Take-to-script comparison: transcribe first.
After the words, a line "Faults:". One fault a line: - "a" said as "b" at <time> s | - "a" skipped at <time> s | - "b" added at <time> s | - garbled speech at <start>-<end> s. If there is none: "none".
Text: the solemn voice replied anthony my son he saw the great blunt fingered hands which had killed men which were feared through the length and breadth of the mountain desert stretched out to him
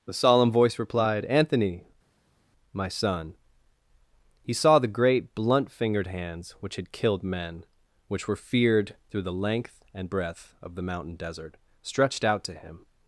the solemn voice replied anthony my son he saw the great blunt fingered hands which had killed men which were feared through the length and breadth of the mountain desert stretched out to him
Faults:
none